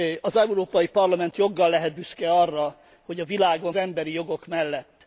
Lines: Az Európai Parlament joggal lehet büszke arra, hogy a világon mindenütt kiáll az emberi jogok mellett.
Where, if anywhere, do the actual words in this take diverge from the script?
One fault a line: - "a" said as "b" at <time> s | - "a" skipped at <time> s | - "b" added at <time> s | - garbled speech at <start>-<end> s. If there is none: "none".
- "mindenütt kiáll az" skipped at 3.7 s